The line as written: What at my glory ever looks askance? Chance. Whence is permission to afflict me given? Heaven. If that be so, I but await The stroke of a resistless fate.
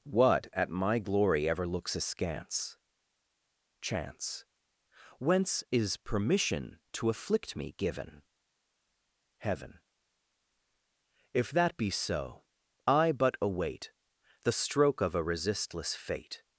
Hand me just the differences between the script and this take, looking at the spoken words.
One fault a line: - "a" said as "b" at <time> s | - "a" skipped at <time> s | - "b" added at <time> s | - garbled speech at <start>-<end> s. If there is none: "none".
none